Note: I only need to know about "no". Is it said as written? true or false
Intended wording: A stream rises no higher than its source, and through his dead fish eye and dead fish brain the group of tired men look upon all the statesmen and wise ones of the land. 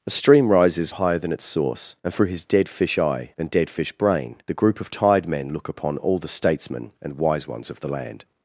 false